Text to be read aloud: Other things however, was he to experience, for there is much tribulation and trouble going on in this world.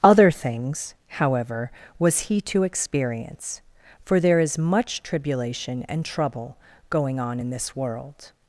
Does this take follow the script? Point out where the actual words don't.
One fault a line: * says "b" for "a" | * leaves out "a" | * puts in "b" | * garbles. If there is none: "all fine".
all fine